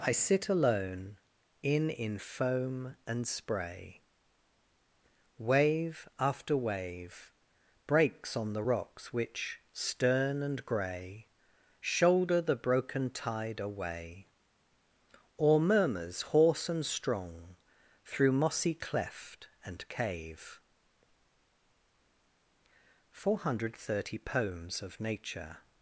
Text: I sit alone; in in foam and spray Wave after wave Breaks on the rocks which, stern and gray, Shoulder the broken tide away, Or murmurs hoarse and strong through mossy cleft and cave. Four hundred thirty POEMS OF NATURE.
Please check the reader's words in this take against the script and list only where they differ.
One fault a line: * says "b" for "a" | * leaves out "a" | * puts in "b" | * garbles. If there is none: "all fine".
all fine